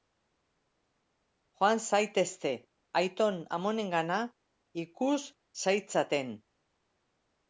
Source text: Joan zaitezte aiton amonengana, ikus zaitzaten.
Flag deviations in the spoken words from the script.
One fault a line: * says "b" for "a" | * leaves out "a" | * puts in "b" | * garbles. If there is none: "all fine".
all fine